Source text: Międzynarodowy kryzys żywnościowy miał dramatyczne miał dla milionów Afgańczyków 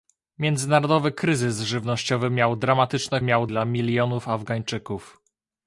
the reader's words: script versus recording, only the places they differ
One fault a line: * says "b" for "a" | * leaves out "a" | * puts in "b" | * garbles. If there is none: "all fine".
all fine